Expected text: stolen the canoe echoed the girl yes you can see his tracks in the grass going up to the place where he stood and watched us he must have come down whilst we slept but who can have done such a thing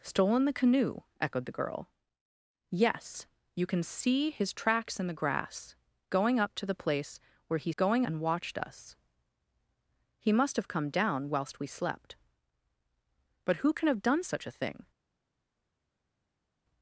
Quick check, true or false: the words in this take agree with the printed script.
false